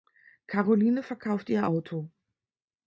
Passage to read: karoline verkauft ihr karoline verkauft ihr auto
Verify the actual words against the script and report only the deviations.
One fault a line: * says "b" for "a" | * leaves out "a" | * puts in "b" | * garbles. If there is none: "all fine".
* leaves out "karoline verkauft ihr"